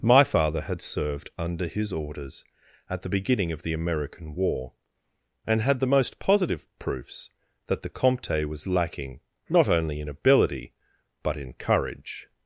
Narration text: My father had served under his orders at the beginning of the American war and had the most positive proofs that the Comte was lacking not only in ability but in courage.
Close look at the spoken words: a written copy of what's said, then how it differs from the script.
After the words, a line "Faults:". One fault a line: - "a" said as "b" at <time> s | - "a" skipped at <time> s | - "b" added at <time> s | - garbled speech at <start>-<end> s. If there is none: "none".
My father had served under his orders at the beginning of the American war and had the most positive proofs that the Comte was lacking not only in ability but in courage.
Faults:
none